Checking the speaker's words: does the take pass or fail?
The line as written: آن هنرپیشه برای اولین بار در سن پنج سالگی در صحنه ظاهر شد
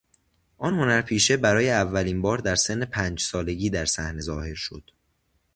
pass